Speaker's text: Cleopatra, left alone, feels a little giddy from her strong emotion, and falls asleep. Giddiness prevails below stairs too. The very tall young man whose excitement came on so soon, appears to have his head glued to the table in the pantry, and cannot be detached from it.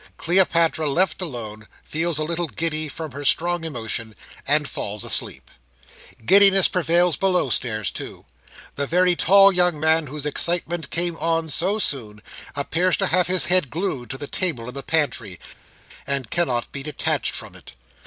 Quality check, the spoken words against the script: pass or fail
pass